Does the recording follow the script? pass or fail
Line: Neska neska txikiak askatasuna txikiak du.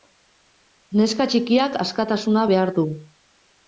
fail